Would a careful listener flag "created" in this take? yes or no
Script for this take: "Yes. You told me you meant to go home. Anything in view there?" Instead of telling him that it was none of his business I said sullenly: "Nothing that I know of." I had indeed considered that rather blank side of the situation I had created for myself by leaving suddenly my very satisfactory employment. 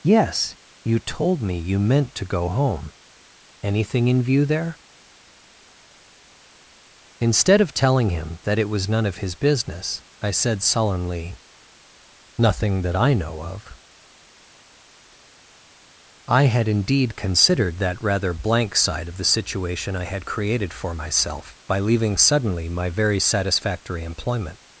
no